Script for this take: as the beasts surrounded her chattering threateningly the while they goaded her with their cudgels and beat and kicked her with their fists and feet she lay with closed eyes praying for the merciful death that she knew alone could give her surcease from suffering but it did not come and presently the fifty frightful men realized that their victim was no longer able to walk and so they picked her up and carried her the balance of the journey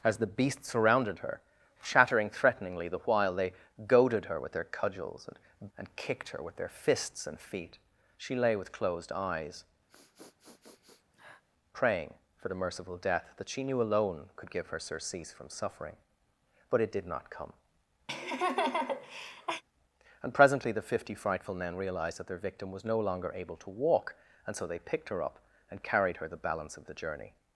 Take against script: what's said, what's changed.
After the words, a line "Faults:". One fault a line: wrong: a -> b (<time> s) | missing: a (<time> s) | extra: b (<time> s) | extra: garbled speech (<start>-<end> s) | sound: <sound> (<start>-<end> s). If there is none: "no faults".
as the beasts surrounded her chattering threateningly the while they goaded her with their cudgels and and kicked her with their fists and feet she lay with closed eyes praying for the merciful death that she knew alone could give her surcease from suffering but it did not come and presently the fifty frightful men realized that their victim was no longer able to walk and so they picked her up and carried her the balance of the journey
Faults:
missing: beat (5.7 s)
sound: sniff (9.9-11.4 s)
sound: laugh (18.1-19.6 s)